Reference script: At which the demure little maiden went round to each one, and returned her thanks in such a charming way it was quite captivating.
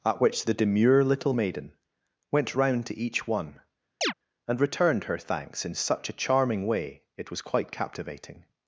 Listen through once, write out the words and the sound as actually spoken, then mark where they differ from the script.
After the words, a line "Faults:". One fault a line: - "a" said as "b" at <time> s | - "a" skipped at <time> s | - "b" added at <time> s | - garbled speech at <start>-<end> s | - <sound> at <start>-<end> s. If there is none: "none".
At which the demure little maiden went round to each one, and returned her thanks in such a charming way it was quite captivating.
Faults:
- chirp at 4.0-4.1 s